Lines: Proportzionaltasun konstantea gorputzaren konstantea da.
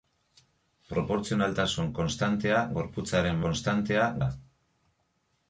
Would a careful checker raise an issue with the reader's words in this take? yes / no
no